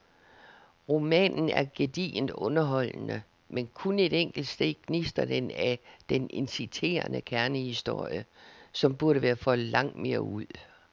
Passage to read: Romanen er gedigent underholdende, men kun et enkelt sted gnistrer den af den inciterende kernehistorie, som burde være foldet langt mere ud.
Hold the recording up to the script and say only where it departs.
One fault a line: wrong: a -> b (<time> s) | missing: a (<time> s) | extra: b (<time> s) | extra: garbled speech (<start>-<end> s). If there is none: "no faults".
no faults